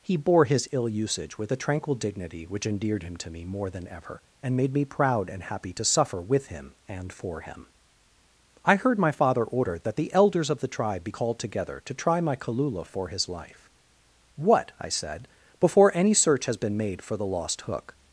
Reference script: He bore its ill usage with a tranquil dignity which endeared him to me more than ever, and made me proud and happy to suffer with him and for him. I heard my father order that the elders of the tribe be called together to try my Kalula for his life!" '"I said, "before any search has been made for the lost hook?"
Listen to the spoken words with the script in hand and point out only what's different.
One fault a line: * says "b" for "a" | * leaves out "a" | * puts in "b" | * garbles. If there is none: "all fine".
* says "his" for "its"
* puts in "What"